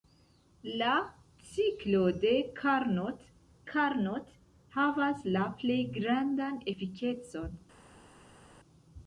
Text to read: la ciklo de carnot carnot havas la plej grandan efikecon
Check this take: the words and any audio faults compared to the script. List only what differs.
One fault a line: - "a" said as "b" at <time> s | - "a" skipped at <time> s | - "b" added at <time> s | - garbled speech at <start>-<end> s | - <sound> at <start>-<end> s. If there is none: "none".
none